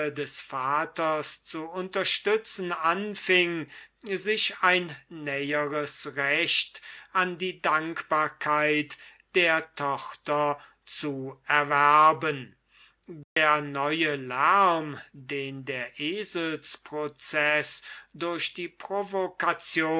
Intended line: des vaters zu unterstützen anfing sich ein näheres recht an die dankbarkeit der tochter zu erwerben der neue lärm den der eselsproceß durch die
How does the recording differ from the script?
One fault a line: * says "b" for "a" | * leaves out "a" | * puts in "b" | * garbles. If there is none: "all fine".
all fine